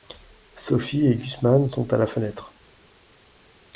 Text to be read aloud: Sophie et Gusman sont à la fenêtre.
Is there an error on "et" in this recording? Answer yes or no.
no